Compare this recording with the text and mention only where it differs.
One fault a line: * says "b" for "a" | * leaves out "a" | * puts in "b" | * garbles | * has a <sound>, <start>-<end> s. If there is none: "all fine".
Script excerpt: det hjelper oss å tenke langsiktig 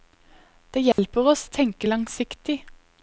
* has a dropout, 0.9-1.0 s